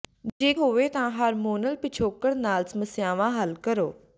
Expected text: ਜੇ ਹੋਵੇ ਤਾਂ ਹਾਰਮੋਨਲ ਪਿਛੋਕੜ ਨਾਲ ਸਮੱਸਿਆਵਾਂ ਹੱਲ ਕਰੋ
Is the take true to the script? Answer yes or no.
yes